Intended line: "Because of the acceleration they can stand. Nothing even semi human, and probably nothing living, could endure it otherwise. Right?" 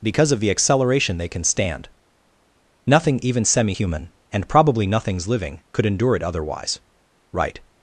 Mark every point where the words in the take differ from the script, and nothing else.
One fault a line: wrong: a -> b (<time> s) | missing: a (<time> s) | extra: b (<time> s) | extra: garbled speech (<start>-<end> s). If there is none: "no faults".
wrong: nothing -> nothings (4.9 s)